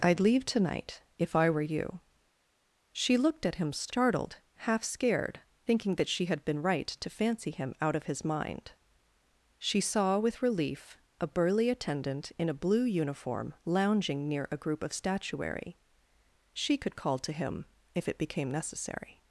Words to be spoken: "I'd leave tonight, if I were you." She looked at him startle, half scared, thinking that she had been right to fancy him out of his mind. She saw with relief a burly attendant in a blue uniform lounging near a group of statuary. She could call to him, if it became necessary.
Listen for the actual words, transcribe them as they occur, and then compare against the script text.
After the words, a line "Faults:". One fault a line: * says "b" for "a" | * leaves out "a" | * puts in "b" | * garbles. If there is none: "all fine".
"I'd leave tonight, if I were you." She looked at him startled, half scared, thinking that she had been right to fancy him out of his mind. She saw with relief a burly attendant in a blue uniform lounging near a group of statuary. She could call to him, if it became necessary.
Faults:
* says "startled" for "startle"